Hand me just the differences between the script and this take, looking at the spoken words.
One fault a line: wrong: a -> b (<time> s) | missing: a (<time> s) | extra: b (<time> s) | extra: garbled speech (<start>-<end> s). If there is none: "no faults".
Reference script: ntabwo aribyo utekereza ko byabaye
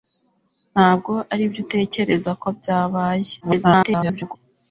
extra: garbled speech (3.4-4.4 s)